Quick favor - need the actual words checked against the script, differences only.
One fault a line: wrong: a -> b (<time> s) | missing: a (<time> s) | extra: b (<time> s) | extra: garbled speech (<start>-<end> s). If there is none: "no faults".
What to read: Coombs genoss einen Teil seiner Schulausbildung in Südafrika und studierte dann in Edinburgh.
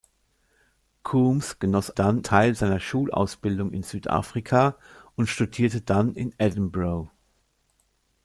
wrong: einen -> dann (1.9 s)